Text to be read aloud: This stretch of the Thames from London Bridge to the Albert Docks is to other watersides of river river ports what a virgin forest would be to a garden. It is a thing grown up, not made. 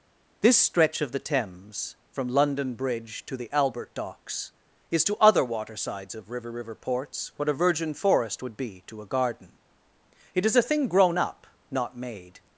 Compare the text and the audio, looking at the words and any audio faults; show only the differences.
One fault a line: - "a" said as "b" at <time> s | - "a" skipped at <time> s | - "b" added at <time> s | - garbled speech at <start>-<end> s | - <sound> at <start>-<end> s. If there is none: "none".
none